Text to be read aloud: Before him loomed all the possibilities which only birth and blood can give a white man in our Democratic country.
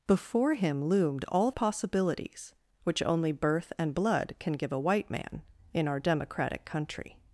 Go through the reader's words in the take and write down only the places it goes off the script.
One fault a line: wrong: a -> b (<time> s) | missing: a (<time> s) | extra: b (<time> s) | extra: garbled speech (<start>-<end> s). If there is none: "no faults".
missing: the (1.5 s)